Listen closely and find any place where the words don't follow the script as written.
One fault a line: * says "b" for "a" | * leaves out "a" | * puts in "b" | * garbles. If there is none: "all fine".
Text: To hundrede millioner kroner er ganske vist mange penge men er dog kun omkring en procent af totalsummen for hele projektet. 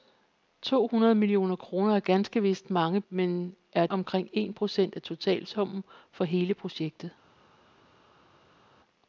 * leaves out "penge"
* leaves out "dog kun"